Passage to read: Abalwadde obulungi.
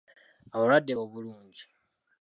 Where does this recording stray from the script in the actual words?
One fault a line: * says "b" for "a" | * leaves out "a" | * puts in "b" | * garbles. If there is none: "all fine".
all fine